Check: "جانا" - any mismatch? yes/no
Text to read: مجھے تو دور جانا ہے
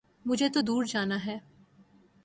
no